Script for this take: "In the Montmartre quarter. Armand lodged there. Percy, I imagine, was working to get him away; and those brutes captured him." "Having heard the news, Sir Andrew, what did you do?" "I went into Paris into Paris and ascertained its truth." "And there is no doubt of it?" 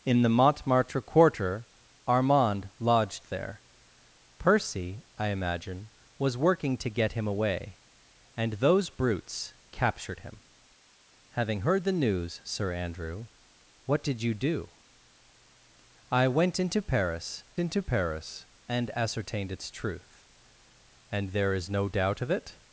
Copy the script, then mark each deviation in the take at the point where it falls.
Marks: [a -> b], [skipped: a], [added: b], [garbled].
"In the Montmartre quarter. Armand lodged there. Percy, I imagine, was working to get him away; and those brutes captured him." "Having heard the news, Sir Andrew, what did you do?" "I went into Paris into Paris and ascertained its truth." "And there is no doubt of it?"